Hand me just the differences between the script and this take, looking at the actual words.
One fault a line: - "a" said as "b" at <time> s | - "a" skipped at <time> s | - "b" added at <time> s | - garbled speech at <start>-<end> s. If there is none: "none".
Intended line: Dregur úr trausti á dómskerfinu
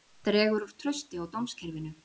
none